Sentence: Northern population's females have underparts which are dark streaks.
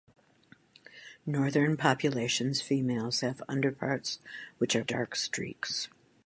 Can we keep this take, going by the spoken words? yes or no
yes